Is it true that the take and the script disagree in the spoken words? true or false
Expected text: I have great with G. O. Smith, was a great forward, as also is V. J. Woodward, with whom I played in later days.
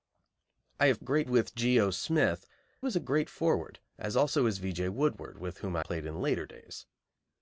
false